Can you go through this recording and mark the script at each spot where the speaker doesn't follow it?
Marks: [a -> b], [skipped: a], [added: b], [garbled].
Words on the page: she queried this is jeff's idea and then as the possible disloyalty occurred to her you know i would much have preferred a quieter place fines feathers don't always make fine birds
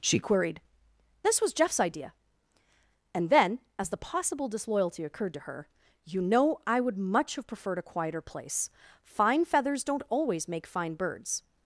she queried this [is -> was] jeff's idea and then as the possible disloyalty occurred to her you know i would much have preferred a quieter place [fines -> fine] feathers don't always make fine birds